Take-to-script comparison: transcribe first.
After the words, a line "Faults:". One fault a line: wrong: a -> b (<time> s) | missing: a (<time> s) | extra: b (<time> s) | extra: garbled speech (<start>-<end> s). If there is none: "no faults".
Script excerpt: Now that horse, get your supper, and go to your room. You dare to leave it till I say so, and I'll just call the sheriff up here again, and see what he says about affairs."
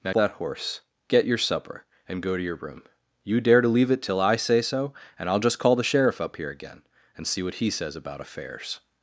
Now that horse, get your supper, and go to your room. You dare to leave it till I say so, and I'll just call the sheriff up here again, and see what he says about affairs."
Faults:
no faults